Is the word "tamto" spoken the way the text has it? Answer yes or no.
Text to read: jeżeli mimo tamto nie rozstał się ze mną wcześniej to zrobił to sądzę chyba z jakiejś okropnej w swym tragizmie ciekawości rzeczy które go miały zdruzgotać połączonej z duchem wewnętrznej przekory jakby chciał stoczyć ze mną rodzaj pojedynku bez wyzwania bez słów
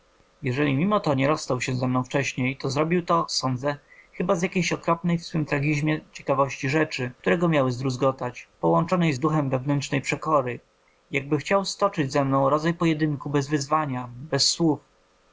no